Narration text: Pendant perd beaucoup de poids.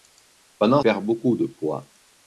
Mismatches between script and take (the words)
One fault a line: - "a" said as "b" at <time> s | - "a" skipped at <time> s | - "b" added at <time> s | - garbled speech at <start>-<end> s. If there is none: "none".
none